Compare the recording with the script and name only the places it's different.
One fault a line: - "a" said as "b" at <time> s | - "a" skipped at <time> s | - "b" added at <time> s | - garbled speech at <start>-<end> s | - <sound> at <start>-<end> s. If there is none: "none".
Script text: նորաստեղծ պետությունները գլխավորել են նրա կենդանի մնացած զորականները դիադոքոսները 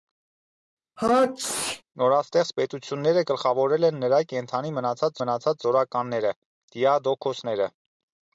- sneeze at 1.0-1.8 s
- "մնացած" added at 5.2 s